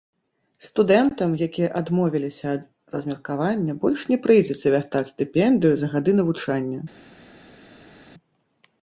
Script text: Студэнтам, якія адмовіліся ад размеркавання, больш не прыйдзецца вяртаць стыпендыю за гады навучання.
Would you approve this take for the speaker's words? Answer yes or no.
yes